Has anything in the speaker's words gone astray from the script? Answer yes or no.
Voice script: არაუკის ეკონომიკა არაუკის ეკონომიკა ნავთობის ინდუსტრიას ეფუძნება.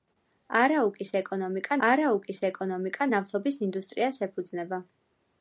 no